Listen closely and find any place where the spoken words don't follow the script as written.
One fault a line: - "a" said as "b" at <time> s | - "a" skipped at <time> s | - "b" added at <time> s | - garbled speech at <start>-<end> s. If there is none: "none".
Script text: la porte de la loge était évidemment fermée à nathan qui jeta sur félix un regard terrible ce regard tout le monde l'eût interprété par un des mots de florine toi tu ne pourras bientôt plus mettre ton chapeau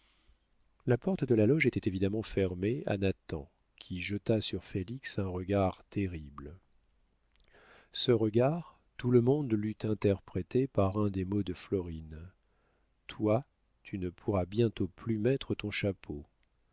none